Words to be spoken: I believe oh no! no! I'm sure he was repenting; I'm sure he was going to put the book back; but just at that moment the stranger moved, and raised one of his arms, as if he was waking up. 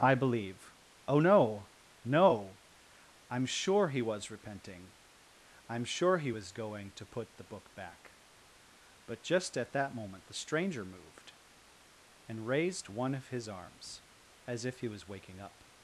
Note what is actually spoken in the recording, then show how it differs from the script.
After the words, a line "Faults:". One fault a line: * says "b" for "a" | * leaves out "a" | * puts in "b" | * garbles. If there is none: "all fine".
I believe oh no! no! I'm sure he was repenting; I'm sure he was going to put the book back; but just at that moment the stranger moved, and raised one of his arms, as if he was waking up.
Faults:
all fine